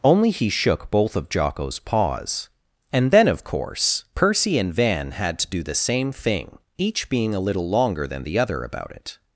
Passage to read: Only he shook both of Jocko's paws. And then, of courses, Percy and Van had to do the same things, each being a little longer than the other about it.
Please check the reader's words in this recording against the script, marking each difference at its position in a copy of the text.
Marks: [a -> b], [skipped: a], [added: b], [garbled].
Only he shook both of Jocko's paws. And then, of [courses, -> course] Percy and Van had to do the same [things, -> thing] each being a little longer than the other about it.